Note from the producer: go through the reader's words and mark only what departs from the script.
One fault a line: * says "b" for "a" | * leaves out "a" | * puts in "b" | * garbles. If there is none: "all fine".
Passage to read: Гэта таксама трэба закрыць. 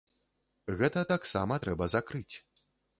all fine